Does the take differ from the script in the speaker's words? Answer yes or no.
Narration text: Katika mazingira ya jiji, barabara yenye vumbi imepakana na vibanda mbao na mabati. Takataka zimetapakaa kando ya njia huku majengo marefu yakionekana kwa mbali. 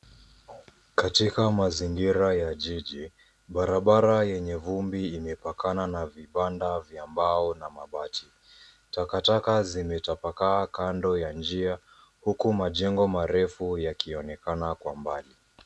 yes